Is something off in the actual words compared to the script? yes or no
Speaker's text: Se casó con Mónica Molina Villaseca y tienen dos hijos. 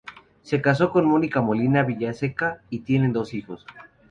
no